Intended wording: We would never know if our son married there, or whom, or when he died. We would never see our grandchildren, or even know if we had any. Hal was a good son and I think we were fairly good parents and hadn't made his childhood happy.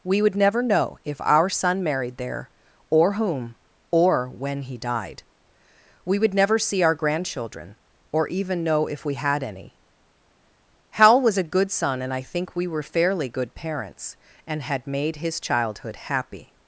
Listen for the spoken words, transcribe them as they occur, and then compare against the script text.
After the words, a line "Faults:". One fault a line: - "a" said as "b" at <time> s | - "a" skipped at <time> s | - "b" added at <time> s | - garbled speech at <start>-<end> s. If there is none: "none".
We would never know if our son married there, or whom, or when he died. We would never see our grandchildren, or even know if we had any. Hal was a good son and I think we were fairly good parents and had made his childhood happy.
Faults:
- "hadn't" said as "had" at 14.6 s